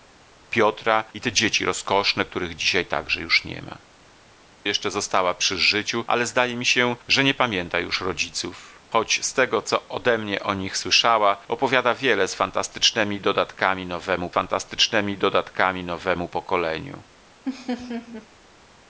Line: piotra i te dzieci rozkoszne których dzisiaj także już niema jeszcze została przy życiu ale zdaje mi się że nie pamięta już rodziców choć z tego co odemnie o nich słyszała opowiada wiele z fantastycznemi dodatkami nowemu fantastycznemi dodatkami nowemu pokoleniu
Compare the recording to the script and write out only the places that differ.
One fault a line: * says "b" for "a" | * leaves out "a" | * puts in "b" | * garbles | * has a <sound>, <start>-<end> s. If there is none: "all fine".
* has a laugh, 17.5-18.3 s